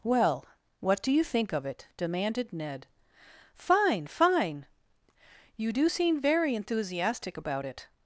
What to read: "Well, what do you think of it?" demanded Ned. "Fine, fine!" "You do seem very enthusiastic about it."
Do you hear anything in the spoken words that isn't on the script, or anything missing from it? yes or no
no